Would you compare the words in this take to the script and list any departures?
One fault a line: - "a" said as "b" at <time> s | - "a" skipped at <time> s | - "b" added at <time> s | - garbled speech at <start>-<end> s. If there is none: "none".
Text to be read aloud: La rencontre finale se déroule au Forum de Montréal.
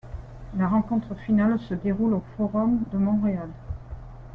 none